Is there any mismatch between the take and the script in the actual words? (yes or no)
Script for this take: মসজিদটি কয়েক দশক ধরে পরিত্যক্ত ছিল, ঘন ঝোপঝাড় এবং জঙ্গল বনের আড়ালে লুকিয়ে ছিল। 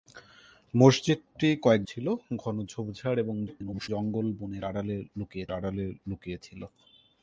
yes